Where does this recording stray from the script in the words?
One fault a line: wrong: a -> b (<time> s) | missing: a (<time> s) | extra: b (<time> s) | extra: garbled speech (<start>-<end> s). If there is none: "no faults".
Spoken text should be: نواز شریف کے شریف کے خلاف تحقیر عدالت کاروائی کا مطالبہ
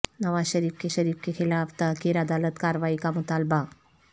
no faults